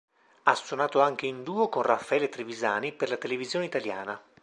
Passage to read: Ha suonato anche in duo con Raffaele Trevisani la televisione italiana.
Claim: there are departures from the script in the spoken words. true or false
true